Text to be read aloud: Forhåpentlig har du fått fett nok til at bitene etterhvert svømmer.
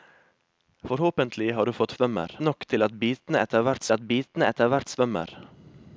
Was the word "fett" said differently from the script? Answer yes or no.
yes